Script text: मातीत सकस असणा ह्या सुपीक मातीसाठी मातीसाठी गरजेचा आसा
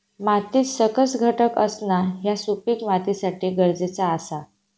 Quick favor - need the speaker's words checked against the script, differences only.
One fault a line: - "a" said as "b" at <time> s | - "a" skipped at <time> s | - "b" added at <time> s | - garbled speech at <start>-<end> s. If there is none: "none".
- "घटक" added at 1.2 s
- "मातीसाठी" skipped at 3.5 s